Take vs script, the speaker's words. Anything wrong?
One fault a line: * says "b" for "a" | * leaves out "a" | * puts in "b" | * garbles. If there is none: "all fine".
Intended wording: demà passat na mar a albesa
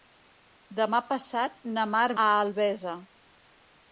all fine